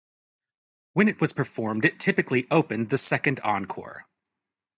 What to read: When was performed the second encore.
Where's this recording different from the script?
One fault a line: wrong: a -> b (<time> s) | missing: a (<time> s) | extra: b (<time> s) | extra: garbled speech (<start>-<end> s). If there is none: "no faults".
extra: it (1.1 s)
extra: it typically opened (1.8 s)